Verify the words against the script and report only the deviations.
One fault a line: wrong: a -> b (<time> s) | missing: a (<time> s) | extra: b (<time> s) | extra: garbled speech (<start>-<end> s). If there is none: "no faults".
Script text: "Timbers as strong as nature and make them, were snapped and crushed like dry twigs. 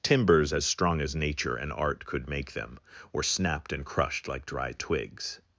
extra: art could (1.7 s)